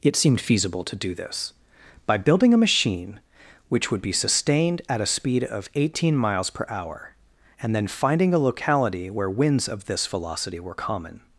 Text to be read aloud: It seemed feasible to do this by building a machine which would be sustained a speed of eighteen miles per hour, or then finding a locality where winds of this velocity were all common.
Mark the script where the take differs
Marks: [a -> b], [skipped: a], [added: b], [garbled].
It seemed feasible to do this by building a machine which would be sustained [added: at] a speed of eighteen miles per hour, [or -> and] then finding a locality where winds of this velocity were [skipped: all] common.